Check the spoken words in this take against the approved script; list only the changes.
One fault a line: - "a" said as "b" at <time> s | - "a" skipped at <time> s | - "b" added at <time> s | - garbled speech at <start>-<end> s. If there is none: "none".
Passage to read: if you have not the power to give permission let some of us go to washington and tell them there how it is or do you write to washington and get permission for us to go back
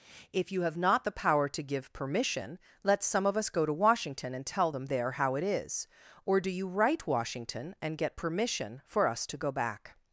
- "to" skipped at 7.1 s